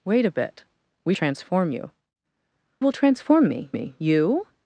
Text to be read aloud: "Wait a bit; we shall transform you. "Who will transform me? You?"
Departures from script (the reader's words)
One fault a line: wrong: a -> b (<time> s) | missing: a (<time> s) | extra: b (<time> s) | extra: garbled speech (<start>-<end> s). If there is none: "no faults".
missing: shall (1.1 s)
missing: Who (1.9 s)
extra: me (3.7 s)